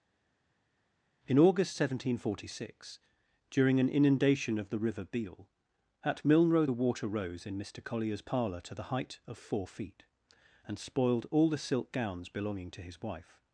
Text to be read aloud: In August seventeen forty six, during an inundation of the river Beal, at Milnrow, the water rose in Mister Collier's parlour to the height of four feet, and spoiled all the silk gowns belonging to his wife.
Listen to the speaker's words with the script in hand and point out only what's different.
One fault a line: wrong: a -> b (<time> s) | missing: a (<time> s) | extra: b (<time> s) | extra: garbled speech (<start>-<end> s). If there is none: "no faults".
no faults